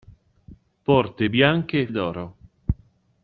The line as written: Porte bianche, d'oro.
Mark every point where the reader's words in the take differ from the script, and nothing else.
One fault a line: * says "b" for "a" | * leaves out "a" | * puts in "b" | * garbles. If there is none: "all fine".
all fine